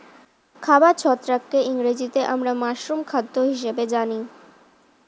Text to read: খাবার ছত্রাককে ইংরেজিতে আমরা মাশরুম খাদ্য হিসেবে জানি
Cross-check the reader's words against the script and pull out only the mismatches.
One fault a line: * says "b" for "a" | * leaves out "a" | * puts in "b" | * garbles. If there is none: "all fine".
all fine